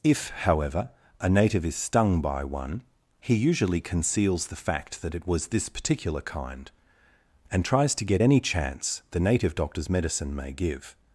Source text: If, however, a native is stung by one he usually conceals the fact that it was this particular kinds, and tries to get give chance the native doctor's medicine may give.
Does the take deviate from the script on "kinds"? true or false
true